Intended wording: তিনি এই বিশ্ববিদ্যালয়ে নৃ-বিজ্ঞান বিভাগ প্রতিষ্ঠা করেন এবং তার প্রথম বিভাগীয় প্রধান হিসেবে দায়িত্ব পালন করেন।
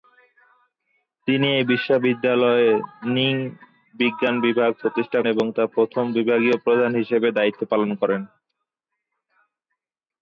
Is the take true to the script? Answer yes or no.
no